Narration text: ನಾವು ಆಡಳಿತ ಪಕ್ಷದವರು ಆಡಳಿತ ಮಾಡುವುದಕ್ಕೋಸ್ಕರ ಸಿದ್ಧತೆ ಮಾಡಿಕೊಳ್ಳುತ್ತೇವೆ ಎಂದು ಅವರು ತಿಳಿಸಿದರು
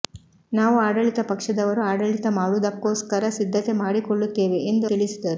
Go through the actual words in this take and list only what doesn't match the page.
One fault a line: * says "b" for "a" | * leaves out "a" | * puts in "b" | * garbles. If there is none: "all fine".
* leaves out "ಅವರು"